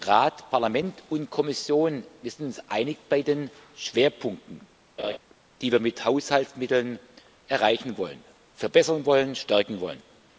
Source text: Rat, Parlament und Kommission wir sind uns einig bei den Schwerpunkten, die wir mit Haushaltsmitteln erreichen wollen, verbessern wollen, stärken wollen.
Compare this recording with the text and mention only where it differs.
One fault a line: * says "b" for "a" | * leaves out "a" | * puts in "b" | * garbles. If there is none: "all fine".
all fine